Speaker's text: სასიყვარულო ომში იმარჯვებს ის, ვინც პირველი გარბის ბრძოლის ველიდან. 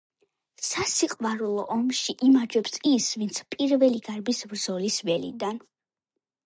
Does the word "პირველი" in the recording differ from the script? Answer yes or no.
no